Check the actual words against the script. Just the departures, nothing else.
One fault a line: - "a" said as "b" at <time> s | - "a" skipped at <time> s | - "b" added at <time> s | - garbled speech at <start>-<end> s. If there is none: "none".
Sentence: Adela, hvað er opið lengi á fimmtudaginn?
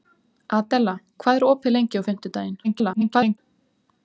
- garbled speech at 2.6-3.4 s